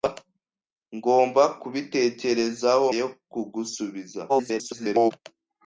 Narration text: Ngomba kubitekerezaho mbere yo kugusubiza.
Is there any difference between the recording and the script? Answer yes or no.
yes